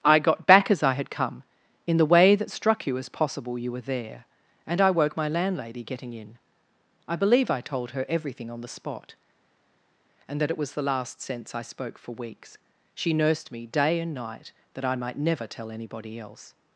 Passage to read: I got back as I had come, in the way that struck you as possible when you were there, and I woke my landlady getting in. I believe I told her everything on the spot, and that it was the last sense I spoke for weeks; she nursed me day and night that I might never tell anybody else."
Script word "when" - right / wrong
wrong